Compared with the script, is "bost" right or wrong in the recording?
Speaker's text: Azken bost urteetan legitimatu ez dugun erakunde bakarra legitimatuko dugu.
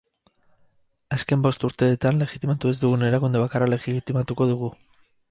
right